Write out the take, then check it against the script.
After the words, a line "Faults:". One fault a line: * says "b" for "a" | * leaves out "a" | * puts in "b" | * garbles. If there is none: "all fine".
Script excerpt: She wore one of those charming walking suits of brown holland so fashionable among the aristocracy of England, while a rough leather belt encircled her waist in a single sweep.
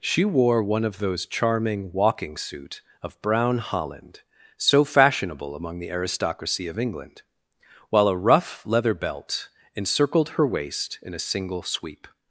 She wore one of those charming walking suit of brown holland so fashionable among the aristocracy of England, while a rough leather belt encircled her waist in a single sweep.
Faults:
* says "suit" for "suits"